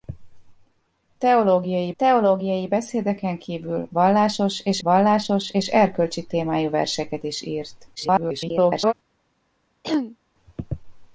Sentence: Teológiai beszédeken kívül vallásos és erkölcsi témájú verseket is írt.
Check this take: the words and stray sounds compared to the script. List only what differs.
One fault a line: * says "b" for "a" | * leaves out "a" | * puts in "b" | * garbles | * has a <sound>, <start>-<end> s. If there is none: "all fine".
* puts in "teológiai"
* puts in "vallásos és"
* garbles
* has a throat clearing, 9.8-10.2 s